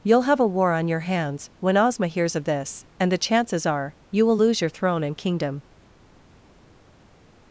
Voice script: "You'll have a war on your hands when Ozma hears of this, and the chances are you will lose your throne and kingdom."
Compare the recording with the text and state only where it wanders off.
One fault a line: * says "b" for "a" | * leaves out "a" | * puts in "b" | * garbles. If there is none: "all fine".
all fine